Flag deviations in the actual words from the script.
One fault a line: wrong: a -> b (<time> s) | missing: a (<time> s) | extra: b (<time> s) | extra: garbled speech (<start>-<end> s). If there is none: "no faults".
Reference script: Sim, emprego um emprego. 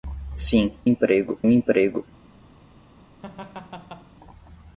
no faults